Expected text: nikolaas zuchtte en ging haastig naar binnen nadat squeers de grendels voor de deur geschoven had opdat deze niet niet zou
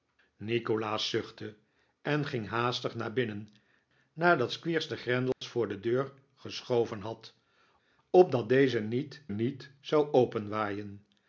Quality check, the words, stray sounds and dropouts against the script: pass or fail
fail